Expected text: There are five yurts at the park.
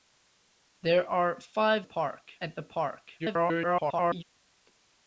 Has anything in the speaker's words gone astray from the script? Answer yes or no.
yes